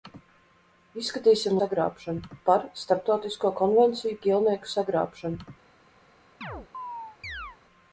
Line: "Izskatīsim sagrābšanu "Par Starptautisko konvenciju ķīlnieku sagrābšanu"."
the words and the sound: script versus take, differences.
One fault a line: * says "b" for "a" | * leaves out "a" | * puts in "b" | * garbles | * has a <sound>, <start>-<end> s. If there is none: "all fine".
* has a chirp, 6.4-7.6 s